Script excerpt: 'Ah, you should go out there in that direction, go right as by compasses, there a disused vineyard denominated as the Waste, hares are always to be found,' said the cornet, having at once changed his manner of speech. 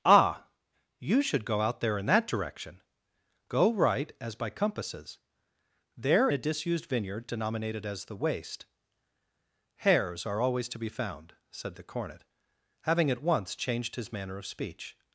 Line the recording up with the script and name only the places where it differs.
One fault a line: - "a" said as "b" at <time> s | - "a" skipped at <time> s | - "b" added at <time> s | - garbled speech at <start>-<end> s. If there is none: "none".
none